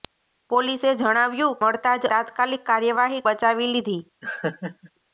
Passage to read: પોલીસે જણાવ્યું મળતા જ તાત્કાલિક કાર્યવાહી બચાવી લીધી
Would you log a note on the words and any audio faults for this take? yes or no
yes